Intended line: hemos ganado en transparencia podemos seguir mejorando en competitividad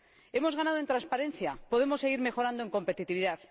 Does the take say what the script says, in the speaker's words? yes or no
yes